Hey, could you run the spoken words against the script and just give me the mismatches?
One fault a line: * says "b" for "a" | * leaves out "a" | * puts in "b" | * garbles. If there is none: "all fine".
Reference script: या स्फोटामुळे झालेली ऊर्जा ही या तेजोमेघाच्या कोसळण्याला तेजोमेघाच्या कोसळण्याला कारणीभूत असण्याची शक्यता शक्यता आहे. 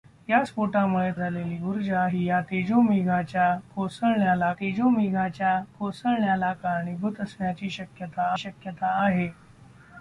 all fine